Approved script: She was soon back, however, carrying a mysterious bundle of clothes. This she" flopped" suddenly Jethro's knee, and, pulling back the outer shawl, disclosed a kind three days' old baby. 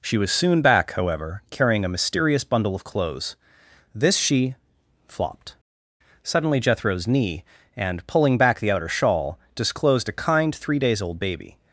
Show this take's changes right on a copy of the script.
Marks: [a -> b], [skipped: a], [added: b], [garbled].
She was soon back, however, carrying a mysterious bundle of clothes. This she" flopped" suddenly Jethro's knee, and, pulling back the outer shawl, disclosed a kind three days' old baby.